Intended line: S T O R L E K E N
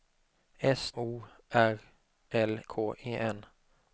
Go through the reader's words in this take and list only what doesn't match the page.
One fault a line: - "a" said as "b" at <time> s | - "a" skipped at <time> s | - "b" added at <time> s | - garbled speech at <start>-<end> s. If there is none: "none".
- "T" skipped at 0.9 s
- "E" skipped at 2.6 s